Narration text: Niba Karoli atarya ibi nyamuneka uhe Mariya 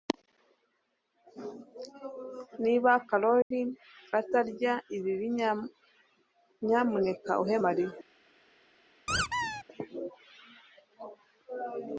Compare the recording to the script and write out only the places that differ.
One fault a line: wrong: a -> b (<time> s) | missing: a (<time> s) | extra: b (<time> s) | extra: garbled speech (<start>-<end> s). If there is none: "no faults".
no faults